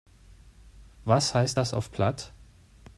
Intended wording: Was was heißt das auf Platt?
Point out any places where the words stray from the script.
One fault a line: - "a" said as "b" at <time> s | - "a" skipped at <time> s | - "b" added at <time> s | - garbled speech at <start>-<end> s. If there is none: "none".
- "was" skipped at 1.3 s